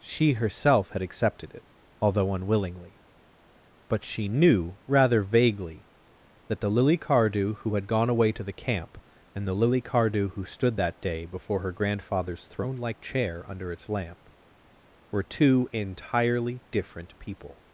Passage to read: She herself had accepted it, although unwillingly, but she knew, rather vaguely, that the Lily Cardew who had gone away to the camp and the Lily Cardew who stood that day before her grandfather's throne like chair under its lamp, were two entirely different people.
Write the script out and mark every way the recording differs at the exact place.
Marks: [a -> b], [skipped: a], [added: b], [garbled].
She herself had accepted it, although unwillingly, but she knew, rather vaguely, that the Lily Cardew who had gone away to the camp and the Lily Cardew who stood that day before her grandfather's throne like chair under its lamp, were two entirely different people.